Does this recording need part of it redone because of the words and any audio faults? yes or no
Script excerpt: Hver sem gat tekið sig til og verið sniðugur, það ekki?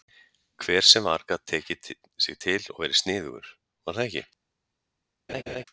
yes